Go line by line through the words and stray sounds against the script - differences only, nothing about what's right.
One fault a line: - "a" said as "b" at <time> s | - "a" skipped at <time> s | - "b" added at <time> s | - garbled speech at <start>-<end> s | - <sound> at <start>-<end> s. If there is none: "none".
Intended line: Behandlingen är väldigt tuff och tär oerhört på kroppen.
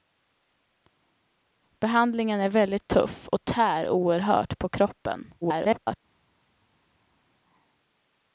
- garbled speech at 5.4-6.0 s